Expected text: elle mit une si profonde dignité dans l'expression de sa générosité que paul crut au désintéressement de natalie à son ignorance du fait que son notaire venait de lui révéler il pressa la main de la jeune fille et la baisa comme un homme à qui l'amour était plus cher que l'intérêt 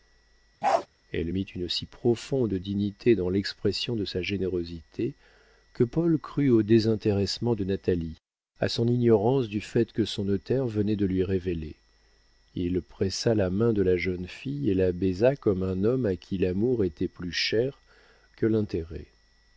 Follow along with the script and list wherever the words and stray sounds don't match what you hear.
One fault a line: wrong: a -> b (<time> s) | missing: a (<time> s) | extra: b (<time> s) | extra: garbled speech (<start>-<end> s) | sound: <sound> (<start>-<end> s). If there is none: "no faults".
sound: bark (0.6-0.9 s)